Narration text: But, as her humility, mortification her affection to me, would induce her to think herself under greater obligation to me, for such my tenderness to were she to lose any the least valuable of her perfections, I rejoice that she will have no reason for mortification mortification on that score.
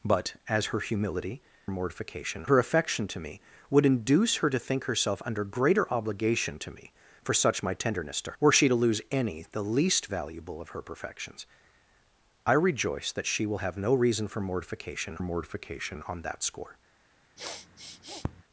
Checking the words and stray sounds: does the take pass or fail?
fail